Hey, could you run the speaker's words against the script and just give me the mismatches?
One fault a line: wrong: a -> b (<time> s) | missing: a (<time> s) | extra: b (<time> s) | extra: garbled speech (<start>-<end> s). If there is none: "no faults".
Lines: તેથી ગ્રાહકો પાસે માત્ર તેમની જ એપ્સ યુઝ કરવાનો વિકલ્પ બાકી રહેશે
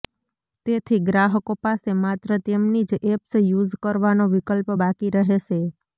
no faults